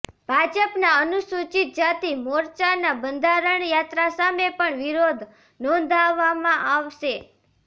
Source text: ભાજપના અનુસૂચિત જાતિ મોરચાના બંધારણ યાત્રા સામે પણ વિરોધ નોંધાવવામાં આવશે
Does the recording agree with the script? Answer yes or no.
yes